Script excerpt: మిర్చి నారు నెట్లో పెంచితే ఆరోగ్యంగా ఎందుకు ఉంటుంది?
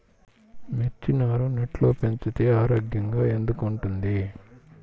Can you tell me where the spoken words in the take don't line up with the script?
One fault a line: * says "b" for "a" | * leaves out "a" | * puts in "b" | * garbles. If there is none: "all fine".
all fine